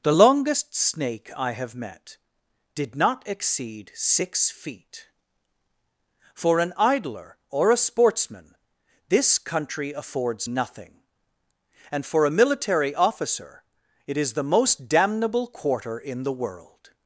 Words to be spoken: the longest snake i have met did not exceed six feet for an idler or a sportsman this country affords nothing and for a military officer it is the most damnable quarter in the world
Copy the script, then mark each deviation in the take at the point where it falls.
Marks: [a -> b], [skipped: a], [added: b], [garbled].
the longest snake i have met did not exceed six feet for an idler or a sportsman this country affords nothing and for a military officer it is the most damnable quarter in the world